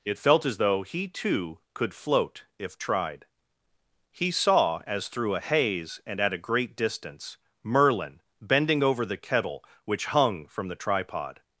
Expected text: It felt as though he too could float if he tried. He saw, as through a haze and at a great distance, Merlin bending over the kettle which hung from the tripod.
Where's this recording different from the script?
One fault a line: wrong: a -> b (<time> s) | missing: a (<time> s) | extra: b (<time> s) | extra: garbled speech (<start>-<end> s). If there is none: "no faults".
missing: he (2.8 s)